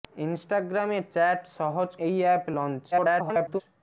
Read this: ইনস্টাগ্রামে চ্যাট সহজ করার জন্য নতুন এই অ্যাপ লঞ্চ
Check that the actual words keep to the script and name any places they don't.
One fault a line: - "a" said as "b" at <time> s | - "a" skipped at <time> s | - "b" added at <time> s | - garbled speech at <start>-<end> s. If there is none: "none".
- "করার জন্য নতুন" skipped at 1.9 s
- garbled speech at 2.9-3.6 s